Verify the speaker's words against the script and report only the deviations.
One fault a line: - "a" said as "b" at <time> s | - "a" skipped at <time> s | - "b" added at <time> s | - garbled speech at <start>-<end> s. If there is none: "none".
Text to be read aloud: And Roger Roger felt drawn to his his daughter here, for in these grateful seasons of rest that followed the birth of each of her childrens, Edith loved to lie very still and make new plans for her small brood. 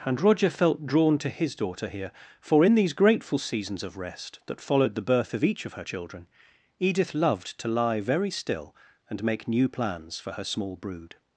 - "Roger" skipped at 0.5 s
- "his" skipped at 1.6 s
- "childrens" said as "children" at 5.8 s